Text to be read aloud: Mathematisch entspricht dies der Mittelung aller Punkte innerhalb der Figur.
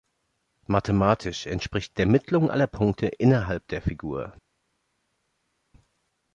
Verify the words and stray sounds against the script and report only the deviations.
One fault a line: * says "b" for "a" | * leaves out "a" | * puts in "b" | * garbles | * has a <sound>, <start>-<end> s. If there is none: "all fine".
* leaves out "dies"